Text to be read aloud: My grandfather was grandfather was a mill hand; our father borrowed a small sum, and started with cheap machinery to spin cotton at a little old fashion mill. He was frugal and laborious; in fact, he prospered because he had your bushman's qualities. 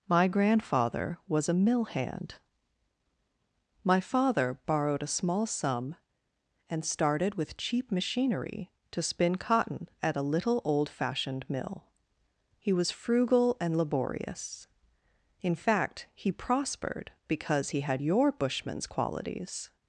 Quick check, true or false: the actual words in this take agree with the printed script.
false